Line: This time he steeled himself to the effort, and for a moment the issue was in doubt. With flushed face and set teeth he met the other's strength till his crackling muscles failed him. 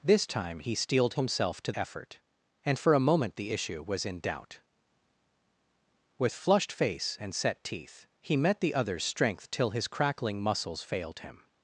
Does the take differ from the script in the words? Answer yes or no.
yes